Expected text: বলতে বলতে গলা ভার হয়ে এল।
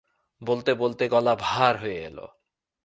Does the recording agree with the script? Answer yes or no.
yes